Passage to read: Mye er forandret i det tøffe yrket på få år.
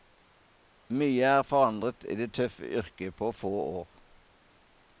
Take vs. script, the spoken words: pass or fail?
pass